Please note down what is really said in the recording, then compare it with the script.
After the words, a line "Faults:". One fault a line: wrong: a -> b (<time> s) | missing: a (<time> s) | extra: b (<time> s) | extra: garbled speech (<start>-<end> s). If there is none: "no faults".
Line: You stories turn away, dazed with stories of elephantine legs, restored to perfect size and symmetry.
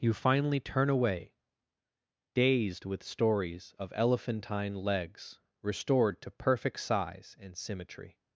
You finally turn away, dazed with stories of elephantine legs, restored to perfect size and symmetry.
Faults:
wrong: stories -> finally (0.1 s)